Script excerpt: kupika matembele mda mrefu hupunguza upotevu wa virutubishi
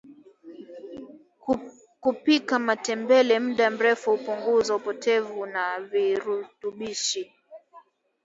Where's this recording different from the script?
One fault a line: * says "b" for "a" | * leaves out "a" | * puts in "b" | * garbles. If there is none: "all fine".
all fine